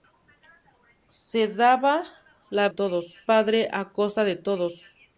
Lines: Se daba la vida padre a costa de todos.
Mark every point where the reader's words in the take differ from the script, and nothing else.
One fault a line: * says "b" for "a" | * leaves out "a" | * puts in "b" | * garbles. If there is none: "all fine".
* says "todos" for "vida"